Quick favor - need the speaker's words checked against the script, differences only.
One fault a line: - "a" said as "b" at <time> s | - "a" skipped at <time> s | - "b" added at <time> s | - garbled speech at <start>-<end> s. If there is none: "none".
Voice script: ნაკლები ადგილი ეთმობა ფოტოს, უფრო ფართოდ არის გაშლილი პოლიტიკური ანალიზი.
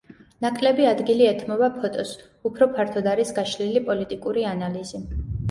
none